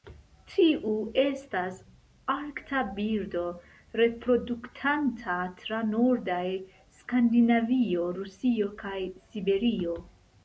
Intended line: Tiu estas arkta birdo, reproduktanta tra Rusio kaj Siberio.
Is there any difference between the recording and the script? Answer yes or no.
yes